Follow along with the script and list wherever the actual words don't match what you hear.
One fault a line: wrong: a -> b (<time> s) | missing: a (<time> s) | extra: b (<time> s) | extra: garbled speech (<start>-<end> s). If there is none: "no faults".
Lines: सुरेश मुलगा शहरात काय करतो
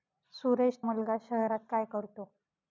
no faults